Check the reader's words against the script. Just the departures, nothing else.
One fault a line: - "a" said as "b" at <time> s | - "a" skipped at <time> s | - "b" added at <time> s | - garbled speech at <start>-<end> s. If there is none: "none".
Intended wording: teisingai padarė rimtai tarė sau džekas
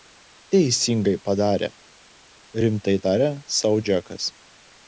none